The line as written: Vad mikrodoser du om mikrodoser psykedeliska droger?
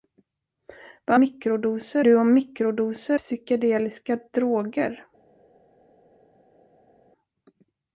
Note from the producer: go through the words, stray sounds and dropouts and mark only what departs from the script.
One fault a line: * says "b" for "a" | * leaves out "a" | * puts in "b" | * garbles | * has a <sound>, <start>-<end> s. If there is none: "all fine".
all fine